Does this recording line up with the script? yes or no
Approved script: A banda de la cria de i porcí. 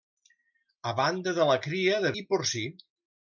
yes